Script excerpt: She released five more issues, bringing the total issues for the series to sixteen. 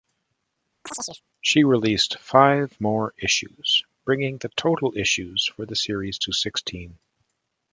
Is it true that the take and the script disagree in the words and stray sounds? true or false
true